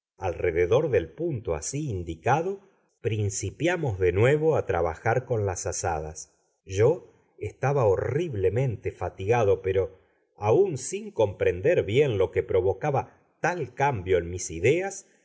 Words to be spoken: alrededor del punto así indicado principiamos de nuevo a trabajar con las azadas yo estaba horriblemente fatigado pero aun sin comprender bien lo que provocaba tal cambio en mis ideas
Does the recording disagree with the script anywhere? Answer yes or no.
no